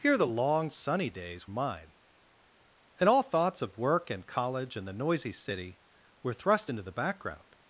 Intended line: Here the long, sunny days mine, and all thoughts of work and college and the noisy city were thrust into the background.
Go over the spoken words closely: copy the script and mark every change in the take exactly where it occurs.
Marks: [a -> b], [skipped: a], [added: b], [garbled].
Here the long, sunny days mine, and all thoughts of work and college and the noisy city were thrust into the background.